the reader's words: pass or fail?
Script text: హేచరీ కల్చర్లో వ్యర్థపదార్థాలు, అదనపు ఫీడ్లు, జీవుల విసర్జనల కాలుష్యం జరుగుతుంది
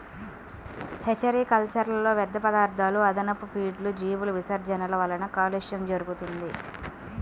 fail